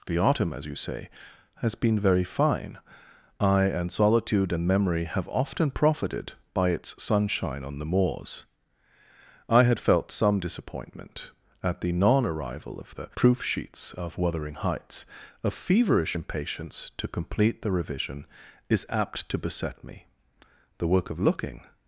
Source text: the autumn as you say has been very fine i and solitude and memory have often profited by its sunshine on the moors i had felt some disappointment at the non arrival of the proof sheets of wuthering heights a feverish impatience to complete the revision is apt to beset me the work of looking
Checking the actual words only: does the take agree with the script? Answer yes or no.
yes